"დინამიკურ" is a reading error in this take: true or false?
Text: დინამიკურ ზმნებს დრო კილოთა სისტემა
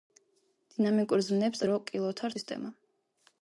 false